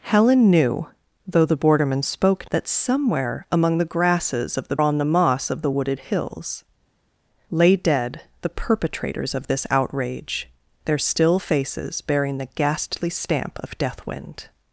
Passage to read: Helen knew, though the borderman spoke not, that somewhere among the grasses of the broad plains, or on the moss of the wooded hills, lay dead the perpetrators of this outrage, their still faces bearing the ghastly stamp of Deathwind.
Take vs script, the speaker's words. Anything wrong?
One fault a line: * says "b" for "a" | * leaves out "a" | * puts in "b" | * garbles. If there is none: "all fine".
* leaves out "not"
* leaves out "broad plains or"